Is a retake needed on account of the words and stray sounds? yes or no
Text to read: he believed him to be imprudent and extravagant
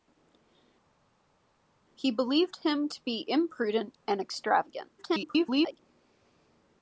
yes